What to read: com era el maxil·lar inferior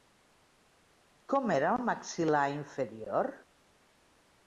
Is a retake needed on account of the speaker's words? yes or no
no